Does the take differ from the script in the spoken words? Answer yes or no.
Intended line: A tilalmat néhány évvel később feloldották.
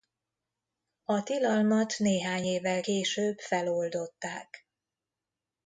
no